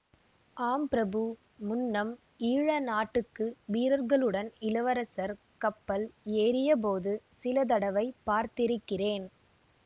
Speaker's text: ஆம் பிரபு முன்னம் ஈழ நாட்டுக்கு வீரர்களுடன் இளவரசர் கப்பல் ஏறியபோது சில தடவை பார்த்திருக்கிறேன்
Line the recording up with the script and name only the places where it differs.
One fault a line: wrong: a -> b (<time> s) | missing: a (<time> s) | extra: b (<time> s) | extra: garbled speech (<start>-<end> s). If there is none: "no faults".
no faults